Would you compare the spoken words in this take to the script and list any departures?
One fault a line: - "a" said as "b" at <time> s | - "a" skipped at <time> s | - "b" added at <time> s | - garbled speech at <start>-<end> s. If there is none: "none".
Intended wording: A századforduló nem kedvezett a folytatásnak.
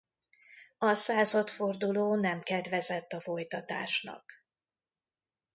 none